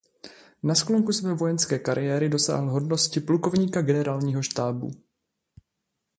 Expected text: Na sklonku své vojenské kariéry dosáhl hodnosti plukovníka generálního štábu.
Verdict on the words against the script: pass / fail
pass